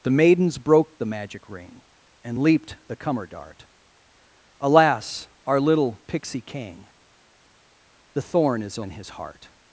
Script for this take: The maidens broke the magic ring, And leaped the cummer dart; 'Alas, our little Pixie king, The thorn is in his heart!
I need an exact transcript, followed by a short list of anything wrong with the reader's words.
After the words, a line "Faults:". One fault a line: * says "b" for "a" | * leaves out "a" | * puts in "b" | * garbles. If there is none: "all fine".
The maidens broke the magic ring, And leaped the cummer dart; 'Alas, our little Pixie king, The thorn is in his heart!
Faults:
all fine